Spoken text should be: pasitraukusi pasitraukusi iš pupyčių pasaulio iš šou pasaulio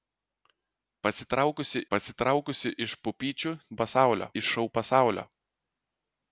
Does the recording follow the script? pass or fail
pass